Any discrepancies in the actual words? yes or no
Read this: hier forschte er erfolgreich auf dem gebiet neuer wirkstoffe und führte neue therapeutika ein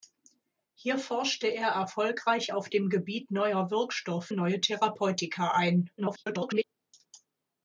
yes